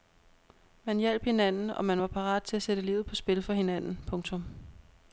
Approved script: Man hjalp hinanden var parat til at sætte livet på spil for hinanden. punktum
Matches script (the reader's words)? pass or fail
fail